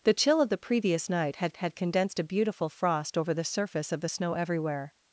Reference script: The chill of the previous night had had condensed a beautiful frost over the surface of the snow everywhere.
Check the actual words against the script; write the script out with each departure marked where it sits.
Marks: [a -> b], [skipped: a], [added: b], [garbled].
The chill of the previous night had had condensed a beautiful frost over the surface of the snow everywhere.